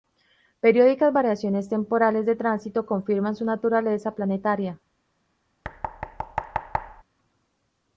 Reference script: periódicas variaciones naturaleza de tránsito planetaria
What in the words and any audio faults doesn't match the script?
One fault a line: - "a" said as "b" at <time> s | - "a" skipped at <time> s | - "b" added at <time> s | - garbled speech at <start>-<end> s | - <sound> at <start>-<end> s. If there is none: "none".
- "naturaleza" said as "temporales" at 1.7 s
- "confirman su naturaleza" added at 2.9 s
- thud at 5.6-7.0 s